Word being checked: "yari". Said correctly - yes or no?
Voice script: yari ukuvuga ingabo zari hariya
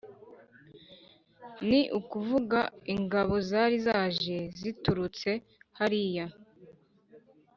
no